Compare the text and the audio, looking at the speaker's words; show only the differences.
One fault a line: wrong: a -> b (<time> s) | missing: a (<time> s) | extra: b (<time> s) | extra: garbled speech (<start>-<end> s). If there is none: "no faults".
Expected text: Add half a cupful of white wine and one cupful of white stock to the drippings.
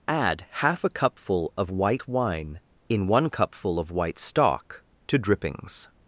wrong: and -> in (2.9 s)
missing: the (5.2 s)